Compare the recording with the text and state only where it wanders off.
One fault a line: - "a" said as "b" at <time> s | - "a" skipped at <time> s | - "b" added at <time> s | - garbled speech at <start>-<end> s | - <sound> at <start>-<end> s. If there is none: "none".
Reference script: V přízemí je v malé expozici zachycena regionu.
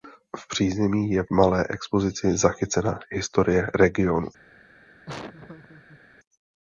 - "historie" added at 3.1 s
- laugh at 5.1-6.0 s